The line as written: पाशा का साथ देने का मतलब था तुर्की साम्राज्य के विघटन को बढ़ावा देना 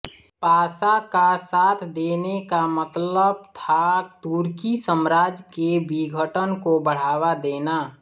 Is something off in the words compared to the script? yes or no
no